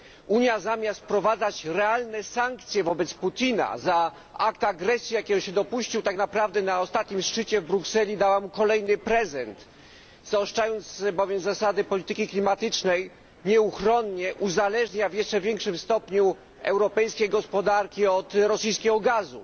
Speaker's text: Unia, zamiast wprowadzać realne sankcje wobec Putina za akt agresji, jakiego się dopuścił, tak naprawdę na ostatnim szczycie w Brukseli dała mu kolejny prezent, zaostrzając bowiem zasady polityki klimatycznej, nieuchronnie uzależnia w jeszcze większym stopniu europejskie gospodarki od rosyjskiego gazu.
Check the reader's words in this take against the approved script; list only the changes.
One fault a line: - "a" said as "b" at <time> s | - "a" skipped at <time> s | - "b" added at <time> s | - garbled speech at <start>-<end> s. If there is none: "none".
none